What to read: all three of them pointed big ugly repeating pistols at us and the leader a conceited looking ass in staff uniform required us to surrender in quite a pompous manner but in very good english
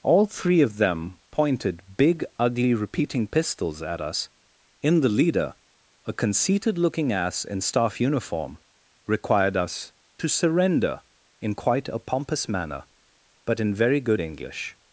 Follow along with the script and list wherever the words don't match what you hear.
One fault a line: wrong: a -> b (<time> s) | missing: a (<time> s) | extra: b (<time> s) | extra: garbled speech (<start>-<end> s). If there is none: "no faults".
wrong: and -> in (4.8 s)